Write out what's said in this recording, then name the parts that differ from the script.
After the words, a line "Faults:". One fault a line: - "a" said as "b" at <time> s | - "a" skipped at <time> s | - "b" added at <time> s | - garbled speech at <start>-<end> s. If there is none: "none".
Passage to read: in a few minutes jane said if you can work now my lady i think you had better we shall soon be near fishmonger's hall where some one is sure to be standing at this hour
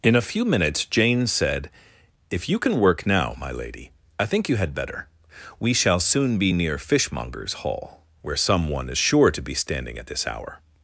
in a few minutes jane said if you can work now my lady i think you had better we shall soon be near fishmonger's hall where some one is sure to be standing at this hour
Faults:
none